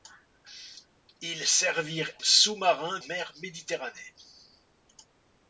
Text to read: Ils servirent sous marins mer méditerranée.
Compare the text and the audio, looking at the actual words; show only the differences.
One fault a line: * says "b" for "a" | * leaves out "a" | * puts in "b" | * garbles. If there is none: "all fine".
all fine